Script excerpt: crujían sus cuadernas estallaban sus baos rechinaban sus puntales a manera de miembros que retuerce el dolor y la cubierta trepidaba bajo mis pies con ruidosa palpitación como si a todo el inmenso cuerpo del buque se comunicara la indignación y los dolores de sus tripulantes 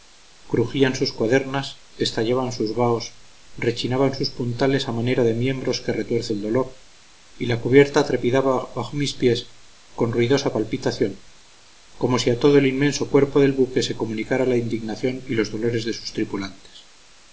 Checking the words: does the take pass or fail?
pass